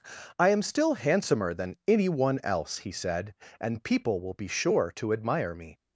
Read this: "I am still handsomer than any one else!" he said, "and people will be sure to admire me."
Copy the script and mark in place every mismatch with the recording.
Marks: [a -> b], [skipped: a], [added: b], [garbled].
"I am still handsomer than any one else!" he said, "and people will be sure to admire me."